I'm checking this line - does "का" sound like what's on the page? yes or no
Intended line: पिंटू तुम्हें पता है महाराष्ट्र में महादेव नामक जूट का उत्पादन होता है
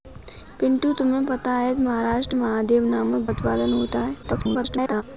no